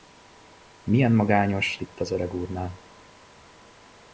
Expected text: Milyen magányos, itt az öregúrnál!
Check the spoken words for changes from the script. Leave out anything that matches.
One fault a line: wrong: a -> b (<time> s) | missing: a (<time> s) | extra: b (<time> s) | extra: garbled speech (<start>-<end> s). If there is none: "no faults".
no faults